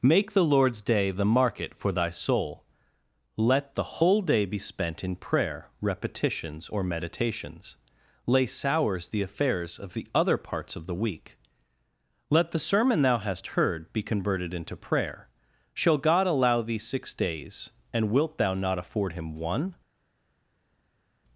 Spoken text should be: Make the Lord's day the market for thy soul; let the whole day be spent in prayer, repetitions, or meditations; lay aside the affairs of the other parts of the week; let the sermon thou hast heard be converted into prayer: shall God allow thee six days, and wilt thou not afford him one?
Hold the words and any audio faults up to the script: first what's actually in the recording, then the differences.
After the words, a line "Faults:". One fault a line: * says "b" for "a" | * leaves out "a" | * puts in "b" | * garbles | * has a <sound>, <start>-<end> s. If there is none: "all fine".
Make the Lord's day the market for thy soul; let the whole day be spent in prayer, repetitions, or meditations; lay sours the affairs of the other parts of the week; let the sermon thou hast heard be converted into prayer: shall God allow thee six days, and wilt thou not afford him one?
Faults:
* says "sours" for "aside"